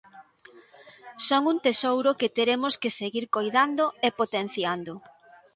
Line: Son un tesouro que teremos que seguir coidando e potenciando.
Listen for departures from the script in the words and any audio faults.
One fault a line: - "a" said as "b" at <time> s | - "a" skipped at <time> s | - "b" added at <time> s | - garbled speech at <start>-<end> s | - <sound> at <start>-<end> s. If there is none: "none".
none